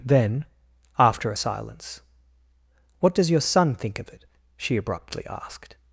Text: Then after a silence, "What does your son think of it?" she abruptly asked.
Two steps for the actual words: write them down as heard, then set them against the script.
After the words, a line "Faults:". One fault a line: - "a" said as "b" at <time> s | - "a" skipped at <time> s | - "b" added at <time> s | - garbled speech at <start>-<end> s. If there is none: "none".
Then after a silence, "What does your son think of it?" she abruptly asked.
Faults:
none